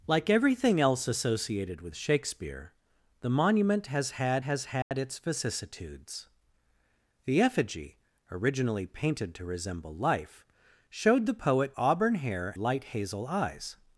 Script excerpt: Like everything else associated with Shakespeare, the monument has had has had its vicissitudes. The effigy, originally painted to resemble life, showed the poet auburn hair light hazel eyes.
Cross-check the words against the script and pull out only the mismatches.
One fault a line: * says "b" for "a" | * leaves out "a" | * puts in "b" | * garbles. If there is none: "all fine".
all fine